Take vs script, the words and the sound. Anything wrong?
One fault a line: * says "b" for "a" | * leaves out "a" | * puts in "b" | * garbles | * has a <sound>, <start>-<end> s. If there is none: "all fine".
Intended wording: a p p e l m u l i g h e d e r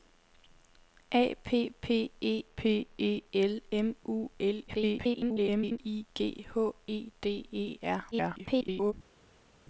* puts in "p e"
* garbles
* garbles